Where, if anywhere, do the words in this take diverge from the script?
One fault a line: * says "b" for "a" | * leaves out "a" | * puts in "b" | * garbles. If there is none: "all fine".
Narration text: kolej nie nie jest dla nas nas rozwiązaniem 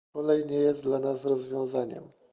* leaves out "nie"
* leaves out "nas"